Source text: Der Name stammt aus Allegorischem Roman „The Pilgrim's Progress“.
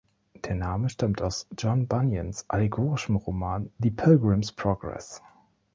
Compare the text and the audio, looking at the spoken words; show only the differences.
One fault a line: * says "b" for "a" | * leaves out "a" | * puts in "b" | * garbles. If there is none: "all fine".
* puts in "John Bunyans"